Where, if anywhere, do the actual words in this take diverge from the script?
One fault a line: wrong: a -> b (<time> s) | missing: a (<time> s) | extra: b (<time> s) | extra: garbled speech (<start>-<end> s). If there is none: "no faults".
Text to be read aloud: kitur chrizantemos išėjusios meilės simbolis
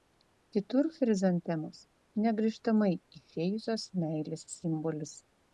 extra: negrįžtamai (2.2 s)